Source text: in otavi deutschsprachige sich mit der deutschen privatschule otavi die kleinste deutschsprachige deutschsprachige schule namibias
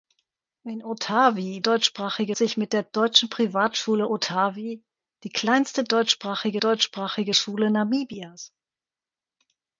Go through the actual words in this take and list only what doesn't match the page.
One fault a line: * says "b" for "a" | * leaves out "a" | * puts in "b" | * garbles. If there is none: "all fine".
all fine